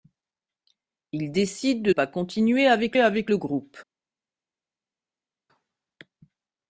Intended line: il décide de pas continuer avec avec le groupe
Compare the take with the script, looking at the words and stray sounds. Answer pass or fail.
pass